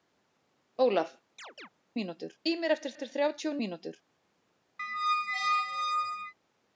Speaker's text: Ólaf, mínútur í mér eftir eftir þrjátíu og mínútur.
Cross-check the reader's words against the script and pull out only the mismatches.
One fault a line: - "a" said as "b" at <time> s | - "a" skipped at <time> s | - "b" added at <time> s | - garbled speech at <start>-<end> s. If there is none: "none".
none